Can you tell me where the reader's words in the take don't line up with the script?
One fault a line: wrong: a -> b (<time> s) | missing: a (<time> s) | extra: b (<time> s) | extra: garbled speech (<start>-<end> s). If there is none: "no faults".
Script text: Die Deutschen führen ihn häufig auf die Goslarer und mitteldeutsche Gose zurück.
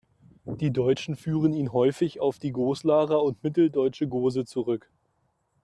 no faults